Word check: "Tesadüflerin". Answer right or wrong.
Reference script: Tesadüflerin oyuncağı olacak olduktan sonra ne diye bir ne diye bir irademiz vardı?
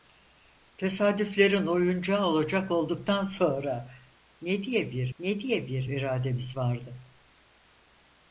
right